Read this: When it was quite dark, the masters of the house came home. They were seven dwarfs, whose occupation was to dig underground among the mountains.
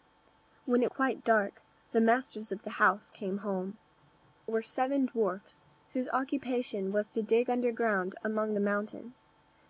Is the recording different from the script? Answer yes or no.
yes